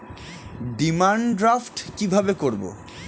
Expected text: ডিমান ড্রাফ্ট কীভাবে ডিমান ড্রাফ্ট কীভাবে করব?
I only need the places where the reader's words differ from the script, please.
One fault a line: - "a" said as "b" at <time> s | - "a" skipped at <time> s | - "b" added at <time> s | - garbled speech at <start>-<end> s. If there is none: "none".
- "ডিমান ড্রাফ্ট কীভাবে" skipped at 2.3 s